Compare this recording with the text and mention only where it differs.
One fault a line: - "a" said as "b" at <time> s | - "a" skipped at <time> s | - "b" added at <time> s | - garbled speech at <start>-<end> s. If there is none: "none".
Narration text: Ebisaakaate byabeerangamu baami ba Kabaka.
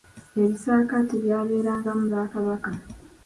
- "baami" skipped at 2.0 s